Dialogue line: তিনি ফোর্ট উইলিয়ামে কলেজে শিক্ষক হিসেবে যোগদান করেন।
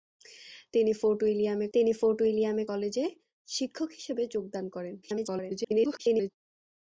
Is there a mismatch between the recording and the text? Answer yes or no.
yes